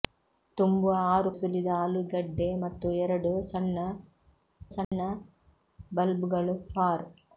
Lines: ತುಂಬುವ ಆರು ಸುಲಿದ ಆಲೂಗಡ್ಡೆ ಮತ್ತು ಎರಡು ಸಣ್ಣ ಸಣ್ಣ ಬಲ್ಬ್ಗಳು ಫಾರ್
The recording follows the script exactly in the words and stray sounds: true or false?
false